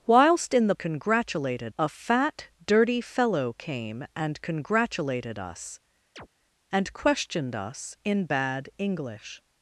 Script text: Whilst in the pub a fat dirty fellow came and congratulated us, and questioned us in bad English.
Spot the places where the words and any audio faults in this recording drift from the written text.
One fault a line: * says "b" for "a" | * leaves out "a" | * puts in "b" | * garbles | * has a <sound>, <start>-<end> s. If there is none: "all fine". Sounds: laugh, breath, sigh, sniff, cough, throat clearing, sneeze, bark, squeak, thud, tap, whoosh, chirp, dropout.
* says "congratulated" for "pub"
* has a chirp, 6.2-6.3 s